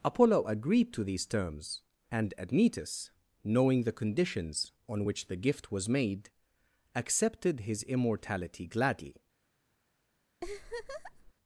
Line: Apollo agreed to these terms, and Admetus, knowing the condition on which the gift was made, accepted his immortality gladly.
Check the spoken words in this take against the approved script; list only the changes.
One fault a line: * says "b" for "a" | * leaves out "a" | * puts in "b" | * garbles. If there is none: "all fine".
* says "conditions" for "condition"